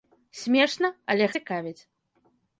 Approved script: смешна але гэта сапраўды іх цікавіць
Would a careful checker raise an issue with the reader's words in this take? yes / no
yes